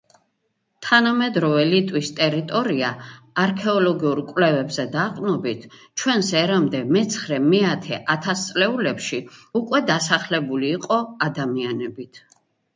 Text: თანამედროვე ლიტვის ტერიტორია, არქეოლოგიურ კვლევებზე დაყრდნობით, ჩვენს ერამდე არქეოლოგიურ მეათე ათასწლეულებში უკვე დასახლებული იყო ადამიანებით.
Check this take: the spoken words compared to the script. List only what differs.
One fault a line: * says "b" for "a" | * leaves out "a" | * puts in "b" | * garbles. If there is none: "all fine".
* says "მეცხრე" for "არქეოლოგიურ"